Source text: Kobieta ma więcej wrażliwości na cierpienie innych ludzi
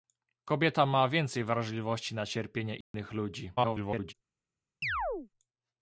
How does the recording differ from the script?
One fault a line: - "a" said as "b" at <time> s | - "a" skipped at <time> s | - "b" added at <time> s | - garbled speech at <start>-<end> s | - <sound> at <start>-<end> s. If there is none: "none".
- dropout at 2.8-2.9 s
- garbled speech at 3.6-4.1 s
- chirp at 4.8-5.3 s